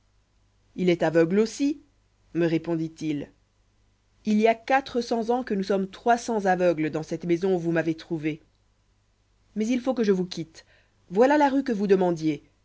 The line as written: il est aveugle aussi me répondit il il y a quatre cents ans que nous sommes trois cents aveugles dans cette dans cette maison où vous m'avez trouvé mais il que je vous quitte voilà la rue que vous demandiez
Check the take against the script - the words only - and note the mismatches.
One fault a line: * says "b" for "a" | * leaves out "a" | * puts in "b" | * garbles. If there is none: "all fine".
* leaves out "dans cette"
* puts in "faut"